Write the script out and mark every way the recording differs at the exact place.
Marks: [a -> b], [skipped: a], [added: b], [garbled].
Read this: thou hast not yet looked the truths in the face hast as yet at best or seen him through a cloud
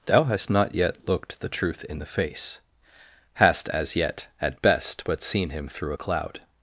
thou hast not yet looked the [truths -> truth] in the face hast as yet at best [or -> but] seen him through a cloud